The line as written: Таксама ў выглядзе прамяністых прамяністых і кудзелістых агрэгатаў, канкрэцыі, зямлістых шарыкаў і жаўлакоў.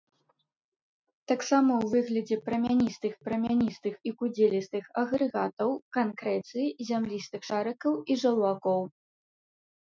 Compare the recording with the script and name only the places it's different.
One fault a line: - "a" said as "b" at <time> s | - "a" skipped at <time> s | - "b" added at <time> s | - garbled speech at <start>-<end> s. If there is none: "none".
none